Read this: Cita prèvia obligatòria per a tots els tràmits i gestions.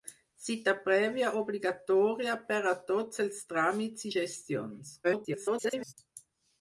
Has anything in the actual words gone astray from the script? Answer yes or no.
yes